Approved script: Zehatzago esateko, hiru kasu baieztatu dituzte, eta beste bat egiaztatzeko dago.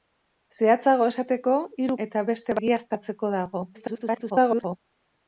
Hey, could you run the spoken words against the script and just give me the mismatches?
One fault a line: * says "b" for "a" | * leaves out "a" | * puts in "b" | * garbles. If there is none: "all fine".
* leaves out "kasu baieztatu dituzte"
* leaves out "bat"
* garbles